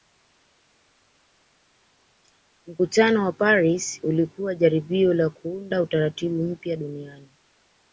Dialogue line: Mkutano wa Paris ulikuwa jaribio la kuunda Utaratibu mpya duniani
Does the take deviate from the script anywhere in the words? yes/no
no